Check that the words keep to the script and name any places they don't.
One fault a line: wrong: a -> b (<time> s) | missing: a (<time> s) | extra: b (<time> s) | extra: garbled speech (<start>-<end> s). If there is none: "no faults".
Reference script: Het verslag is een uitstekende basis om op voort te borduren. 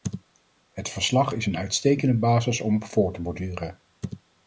no faults